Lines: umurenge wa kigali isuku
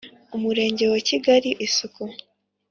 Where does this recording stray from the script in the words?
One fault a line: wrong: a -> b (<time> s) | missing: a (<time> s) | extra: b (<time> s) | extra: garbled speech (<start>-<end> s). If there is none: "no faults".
no faults